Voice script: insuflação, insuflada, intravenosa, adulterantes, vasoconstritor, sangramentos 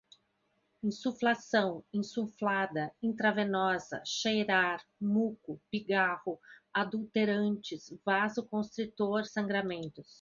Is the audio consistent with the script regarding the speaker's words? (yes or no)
no